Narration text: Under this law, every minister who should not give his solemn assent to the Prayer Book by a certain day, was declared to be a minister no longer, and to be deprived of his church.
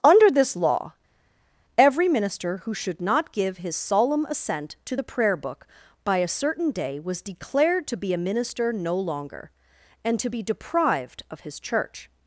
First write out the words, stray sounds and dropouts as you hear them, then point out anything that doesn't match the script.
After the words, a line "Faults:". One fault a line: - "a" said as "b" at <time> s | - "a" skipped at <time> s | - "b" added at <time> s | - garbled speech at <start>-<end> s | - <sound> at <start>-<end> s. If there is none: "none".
Under this law, every minister who should not give his solemn assent to the Prayer Book by a certain day, was declared to be a minister no longer, and to be deprived of his church.
Faults:
none